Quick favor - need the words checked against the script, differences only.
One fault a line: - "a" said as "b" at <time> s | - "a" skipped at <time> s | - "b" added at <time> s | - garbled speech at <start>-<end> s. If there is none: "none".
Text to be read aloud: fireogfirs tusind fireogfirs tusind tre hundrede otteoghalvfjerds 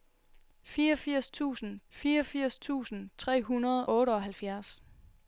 none